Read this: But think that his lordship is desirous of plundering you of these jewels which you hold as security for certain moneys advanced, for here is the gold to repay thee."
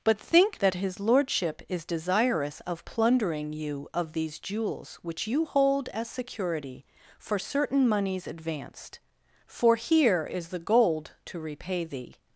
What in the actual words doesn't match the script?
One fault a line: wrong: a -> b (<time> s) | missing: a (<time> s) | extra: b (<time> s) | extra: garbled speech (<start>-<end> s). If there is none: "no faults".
no faults